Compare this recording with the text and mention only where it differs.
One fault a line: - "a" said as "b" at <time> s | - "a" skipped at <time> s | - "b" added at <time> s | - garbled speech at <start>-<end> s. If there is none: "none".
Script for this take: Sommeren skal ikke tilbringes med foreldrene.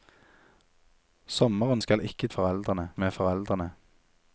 - "tilbringes" said as "foreldrene" at 2.3 s